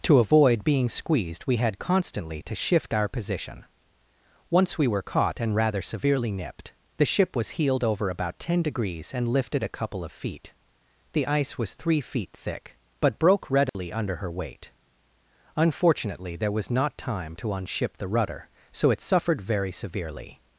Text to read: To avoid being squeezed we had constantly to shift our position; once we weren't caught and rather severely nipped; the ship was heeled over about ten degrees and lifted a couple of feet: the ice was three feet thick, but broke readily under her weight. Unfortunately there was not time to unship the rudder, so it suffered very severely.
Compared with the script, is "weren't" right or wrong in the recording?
wrong